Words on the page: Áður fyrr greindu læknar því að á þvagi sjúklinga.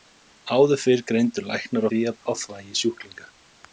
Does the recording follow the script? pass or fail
pass